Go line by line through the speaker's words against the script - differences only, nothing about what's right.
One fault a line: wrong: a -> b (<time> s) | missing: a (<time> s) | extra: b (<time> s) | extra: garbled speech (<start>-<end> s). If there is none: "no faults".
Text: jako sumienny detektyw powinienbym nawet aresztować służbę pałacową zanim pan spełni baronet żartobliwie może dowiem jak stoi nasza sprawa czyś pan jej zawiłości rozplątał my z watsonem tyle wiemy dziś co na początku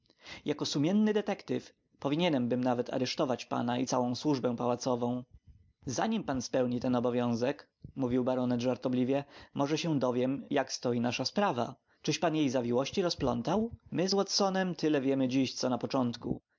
extra: pana i całą (3.5 s)
extra: ten obowiązek mówił (6.8 s)
extra: się (9.8 s)